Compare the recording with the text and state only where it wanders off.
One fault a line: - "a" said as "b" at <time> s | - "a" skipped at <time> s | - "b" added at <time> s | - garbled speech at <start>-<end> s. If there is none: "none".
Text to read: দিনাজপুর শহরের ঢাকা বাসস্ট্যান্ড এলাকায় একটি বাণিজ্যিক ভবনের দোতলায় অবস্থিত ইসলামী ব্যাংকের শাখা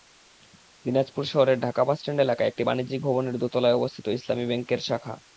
none